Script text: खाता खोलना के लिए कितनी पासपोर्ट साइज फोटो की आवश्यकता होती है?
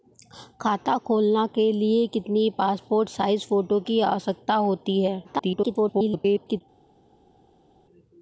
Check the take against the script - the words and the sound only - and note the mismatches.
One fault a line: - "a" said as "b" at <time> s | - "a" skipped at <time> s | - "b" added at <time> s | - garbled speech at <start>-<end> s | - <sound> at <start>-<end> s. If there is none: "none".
- garbled speech at 5.2-6.6 s